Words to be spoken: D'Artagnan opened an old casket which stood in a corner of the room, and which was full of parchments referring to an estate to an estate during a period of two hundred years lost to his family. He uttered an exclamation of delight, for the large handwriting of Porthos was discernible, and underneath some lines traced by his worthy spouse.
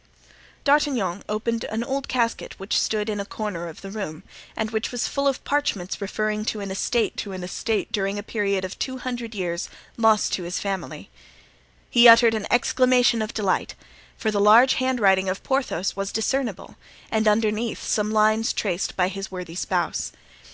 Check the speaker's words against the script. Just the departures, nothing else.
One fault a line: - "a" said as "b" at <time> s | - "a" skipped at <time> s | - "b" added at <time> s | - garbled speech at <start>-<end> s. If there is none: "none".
none